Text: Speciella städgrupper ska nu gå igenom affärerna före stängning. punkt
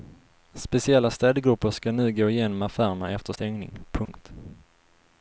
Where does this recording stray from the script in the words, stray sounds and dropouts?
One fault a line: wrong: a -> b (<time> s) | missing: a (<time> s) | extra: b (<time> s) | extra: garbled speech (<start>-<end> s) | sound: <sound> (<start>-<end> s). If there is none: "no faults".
wrong: före -> efter (3.1 s)
sound: dropout (4.1-4.1 s)